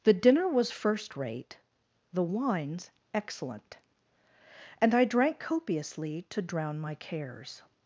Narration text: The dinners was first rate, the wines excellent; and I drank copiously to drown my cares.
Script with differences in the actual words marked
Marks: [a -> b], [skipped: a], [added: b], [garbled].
The [dinners -> dinner] was first rate, the wines excellent; and I drank copiously to drown my cares.